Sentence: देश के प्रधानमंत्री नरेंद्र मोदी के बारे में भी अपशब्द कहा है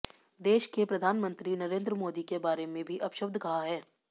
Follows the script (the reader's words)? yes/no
yes